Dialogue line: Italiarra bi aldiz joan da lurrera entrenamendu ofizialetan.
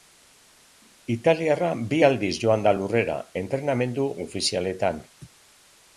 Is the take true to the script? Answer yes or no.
yes